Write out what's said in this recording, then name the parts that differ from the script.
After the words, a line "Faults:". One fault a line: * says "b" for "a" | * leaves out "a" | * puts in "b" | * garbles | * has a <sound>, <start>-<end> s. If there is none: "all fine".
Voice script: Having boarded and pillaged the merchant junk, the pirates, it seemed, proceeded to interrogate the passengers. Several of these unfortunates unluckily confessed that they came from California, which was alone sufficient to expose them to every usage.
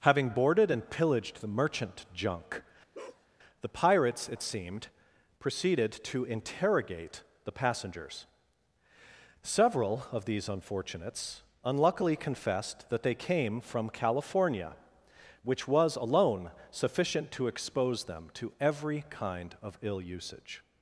Having boarded and pillaged the merchant junk, the pirates, it seemed, proceeded to interrogate the passengers. Several of these unfortunates unluckily confessed that they came from California, which was alone sufficient to expose them to every kind of ill usage.
Faults:
* has a bark, 2.9-3.3 s
* puts in "kind of ill"